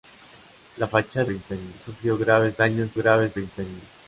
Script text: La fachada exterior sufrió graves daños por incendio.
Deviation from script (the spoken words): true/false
true